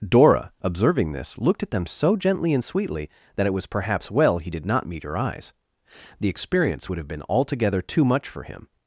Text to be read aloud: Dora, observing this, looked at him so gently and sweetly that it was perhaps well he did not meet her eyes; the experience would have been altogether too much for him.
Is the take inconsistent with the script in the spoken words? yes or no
yes